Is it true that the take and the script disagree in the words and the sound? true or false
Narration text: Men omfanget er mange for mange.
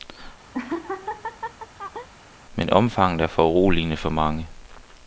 true